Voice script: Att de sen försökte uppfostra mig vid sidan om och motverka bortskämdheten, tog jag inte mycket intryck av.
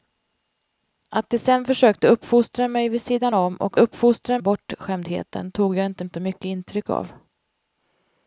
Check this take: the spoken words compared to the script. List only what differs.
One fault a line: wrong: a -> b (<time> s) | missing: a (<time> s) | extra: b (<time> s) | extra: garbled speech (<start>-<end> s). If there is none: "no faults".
wrong: motverka -> uppfostra (3.8 s)
extra: inte (6.0 s)